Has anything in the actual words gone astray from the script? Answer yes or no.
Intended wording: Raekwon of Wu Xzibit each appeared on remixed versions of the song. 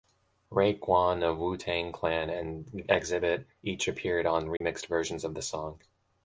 yes